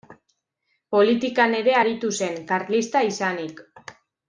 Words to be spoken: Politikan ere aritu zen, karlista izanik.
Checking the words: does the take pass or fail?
pass